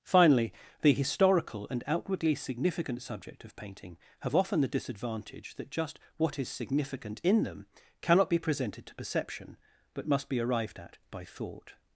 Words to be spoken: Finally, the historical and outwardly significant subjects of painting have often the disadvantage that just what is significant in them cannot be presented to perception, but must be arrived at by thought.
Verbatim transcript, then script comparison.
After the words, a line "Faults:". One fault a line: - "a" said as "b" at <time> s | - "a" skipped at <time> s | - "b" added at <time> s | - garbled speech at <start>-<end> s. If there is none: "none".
Finally, the historical and outwardly significant subject of painting have often the disadvantage that just what is significant in them cannot be presented to perception, but must be arrived at by thought.
Faults:
- "subjects" said as "subject" at 3.0 s